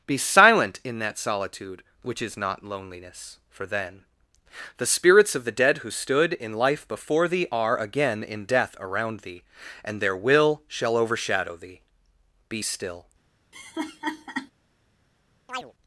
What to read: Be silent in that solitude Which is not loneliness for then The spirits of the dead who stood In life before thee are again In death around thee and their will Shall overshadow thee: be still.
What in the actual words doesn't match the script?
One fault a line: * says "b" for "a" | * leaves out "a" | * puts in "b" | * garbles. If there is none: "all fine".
all fine